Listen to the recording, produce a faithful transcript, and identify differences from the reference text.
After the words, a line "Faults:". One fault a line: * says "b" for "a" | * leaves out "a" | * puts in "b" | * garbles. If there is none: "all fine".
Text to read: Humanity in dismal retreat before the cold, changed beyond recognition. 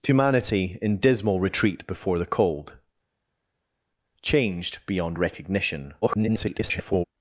Humanity in dismal retreat before the cold, changed beyond recognition. [garbled]
Faults:
* garbles